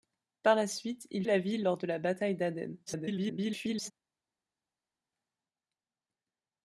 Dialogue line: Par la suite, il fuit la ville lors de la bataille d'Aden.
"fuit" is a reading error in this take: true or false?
true